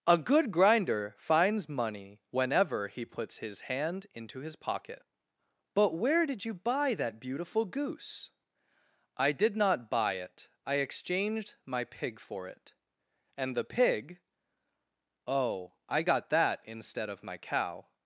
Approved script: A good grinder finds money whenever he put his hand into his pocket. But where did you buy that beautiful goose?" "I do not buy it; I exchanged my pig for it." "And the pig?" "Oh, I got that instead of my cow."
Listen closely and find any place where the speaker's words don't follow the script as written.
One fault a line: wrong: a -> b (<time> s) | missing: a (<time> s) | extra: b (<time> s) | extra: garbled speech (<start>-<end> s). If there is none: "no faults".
wrong: put -> puts (3.0 s)
wrong: do -> did (9.3 s)